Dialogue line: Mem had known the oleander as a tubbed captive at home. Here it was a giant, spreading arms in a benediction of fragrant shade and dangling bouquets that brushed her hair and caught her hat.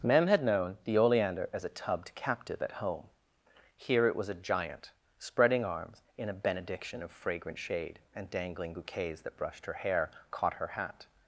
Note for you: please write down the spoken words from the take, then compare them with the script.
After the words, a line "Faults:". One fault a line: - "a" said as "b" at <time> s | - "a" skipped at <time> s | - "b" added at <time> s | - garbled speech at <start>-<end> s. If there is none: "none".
Mem had known the oleander as a tubbed captive at home. Here it was a giant, spreading arms in a benediction of fragrant shade and dangling bouquets that brushed her hair caught her hat.
Faults:
- "and" skipped at 10.1 s